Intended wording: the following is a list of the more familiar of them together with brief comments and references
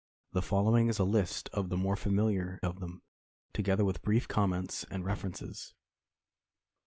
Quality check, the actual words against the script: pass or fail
pass